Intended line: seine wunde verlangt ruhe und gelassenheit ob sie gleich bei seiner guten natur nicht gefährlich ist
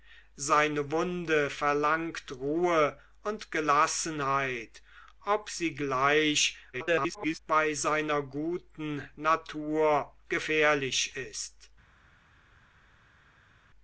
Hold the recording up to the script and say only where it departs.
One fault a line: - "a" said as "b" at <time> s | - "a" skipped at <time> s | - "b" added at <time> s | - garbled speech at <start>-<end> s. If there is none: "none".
- garbled speech at 6.7-7.4 s
- "nicht" skipped at 10.1 s